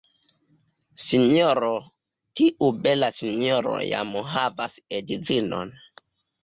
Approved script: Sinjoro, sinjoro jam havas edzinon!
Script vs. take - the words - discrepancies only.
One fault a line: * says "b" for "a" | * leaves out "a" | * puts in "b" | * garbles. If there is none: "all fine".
* puts in "tiu bela"